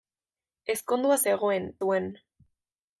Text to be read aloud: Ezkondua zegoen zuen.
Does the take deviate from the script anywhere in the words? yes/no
no